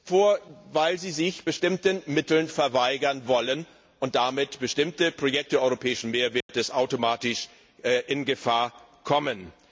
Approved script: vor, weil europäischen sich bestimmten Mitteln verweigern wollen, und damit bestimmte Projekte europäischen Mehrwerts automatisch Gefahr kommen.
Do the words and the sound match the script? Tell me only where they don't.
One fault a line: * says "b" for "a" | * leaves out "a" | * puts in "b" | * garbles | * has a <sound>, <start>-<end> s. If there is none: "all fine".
* says "sie" for "europäischen"
* has a dropout, 6.4-6.5 s
* puts in "in"